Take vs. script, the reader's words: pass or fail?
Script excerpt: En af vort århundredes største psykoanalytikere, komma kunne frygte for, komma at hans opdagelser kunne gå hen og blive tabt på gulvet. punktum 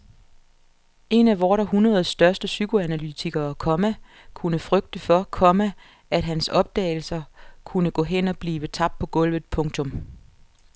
pass